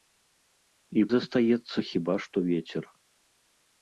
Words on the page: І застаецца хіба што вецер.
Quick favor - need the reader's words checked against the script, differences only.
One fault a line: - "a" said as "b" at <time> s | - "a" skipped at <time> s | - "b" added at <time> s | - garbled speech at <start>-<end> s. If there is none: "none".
none